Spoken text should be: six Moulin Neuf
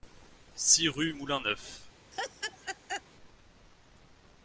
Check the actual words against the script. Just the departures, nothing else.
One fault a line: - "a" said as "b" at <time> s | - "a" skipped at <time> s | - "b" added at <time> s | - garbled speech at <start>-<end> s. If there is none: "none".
- "rue" added at 0.9 s